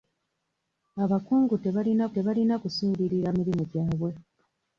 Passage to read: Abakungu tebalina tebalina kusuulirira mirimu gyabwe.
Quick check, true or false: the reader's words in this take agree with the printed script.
true